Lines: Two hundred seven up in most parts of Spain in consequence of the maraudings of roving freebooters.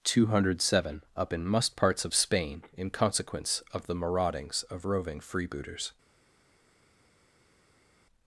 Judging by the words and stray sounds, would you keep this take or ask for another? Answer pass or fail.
fail